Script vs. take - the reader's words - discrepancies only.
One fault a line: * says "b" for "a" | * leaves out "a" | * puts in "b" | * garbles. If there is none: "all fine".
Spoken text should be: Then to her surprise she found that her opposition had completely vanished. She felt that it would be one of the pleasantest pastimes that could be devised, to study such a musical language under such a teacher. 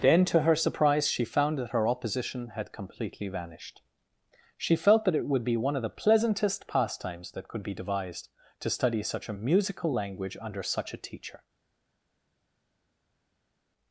all fine